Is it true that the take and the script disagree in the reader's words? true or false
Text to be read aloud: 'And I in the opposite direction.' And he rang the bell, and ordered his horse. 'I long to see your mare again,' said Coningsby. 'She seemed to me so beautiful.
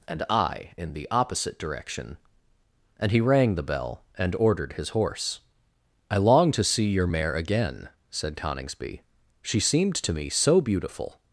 false